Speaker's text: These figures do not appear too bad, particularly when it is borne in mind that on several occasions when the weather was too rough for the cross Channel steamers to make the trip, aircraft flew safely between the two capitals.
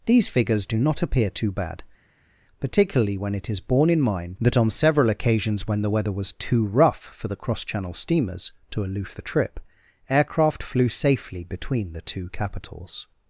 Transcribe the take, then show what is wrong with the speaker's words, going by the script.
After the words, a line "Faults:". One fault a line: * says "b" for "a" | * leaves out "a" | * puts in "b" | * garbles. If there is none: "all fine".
These figures do not appear too bad, particularly when it is borne in mind that on several occasions when the weather was too rough for the cross Channel steamers to aloof the trip, aircraft flew safely between the two capitals.
Faults:
* says "aloof" for "make"